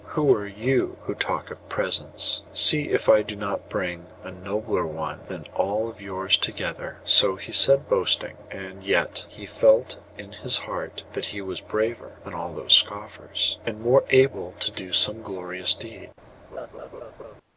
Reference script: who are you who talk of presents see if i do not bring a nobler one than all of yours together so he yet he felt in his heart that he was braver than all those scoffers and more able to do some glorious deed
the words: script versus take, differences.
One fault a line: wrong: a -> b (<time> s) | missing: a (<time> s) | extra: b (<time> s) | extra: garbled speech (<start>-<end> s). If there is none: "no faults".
extra: said boasting and (7.5 s)